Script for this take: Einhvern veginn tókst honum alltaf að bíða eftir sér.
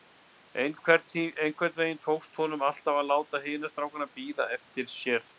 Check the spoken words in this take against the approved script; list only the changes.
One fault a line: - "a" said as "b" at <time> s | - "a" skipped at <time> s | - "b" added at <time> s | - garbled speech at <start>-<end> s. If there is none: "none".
- "láta hina strákana" added at 3.1 s